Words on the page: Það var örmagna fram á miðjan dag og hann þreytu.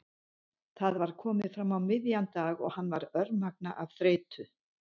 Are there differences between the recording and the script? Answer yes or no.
yes